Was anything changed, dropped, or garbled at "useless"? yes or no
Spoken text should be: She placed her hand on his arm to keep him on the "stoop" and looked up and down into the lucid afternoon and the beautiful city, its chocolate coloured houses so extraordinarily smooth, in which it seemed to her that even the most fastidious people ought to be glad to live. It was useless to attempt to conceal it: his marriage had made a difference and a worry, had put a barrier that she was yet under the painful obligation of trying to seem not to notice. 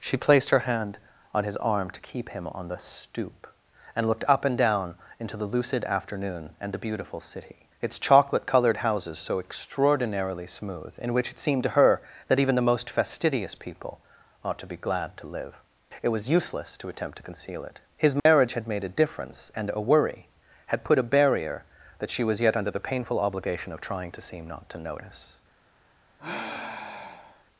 no